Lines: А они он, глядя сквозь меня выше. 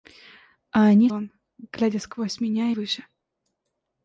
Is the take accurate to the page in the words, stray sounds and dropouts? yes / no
yes